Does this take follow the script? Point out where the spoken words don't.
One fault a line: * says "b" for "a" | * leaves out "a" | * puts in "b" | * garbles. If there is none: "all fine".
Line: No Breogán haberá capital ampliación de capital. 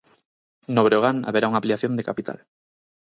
* says "unha" for "capital"